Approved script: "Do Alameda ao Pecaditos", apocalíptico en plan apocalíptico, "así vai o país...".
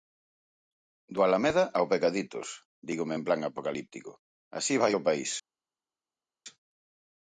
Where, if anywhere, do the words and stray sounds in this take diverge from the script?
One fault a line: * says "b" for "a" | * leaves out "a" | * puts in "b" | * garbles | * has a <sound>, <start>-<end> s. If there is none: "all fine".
* says "dígome" for "apocalíptico"